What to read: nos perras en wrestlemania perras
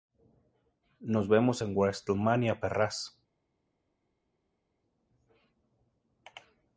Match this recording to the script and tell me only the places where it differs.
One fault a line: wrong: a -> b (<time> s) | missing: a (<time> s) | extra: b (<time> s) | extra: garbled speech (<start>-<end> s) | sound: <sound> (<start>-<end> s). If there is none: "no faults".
wrong: perras -> vemos (1.3 s)